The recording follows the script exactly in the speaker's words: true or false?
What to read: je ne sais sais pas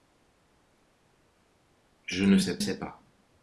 true